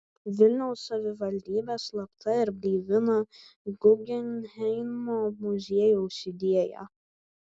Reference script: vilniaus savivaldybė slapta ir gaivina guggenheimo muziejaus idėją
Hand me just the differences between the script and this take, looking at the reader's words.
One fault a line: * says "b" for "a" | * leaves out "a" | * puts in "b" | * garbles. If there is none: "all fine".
all fine